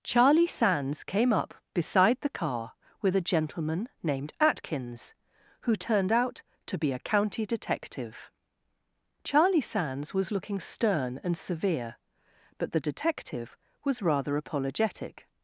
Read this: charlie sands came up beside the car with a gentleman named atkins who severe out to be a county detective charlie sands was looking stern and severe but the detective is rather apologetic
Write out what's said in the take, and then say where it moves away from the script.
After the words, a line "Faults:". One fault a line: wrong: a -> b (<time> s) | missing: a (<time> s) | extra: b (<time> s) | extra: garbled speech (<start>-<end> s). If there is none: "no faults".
charlie sands came up beside the car with a gentleman named atkins who turned out to be a county detective charlie sands was looking stern and severe but the detective was rather apologetic
Faults:
wrong: severe -> turned (5.8 s)
wrong: is -> was (13.8 s)